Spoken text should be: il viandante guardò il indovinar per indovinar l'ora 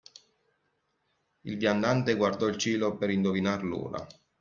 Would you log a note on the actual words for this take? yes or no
yes